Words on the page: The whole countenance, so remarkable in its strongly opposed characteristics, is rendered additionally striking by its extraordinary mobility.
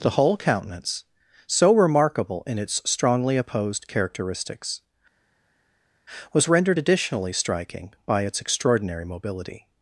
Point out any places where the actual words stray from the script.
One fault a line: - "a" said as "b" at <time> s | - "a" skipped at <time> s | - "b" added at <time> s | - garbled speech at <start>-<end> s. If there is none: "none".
- "is" said as "was" at 6.3 s